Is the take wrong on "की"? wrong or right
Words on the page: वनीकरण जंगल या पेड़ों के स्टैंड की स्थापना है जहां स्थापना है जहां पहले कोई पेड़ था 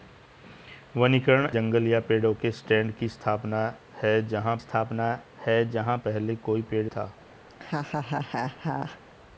right